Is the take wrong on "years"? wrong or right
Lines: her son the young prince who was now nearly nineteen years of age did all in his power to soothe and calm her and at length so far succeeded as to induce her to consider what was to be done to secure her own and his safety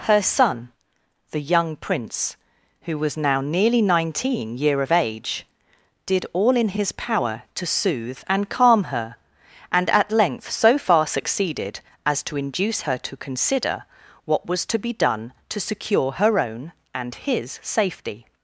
wrong